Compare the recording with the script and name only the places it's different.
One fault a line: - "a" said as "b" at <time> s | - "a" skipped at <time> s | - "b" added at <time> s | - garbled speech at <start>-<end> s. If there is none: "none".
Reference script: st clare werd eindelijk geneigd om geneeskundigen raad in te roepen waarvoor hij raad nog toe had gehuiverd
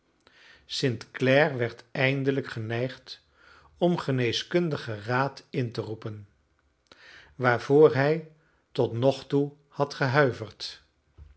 - "raad" said as "tot" at 8.7 s